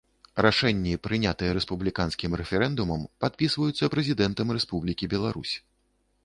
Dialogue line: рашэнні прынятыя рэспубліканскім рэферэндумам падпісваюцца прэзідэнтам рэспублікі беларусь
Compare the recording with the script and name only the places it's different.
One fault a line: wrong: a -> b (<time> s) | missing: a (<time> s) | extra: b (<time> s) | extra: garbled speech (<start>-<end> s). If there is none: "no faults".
no faults